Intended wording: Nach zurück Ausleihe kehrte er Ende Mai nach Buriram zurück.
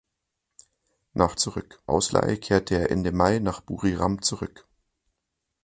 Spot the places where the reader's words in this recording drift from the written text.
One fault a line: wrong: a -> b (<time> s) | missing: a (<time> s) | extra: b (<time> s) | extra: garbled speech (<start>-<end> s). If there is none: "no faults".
no faults